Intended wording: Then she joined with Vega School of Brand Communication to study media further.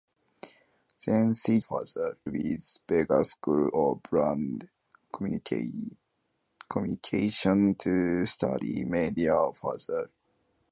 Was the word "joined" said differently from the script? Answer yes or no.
yes